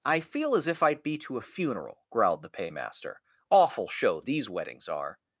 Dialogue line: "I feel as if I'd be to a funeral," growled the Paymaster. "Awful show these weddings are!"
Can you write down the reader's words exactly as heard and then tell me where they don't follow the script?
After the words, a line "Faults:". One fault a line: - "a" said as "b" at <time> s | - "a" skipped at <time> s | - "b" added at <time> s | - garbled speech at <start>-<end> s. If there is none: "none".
"I feel as if I'd be to a funeral," growled the Paymaster. "Awful show these weddings are!"
Faults:
none